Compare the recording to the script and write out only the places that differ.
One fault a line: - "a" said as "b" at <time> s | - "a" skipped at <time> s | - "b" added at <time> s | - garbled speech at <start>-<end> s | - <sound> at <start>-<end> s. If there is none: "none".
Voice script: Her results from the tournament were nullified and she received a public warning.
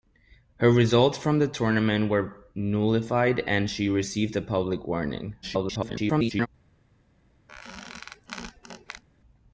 - garbled speech at 5.4-6.5 s
- squeak at 7.5-9.0 s